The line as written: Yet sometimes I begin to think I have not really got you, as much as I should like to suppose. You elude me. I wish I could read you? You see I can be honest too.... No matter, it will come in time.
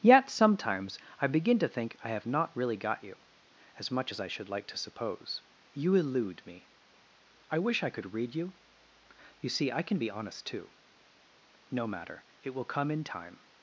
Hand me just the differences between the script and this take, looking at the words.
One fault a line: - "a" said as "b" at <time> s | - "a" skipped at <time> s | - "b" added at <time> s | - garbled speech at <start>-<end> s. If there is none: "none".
none